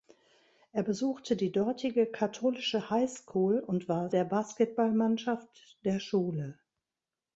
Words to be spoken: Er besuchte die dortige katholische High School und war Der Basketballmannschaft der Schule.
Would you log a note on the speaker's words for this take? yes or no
no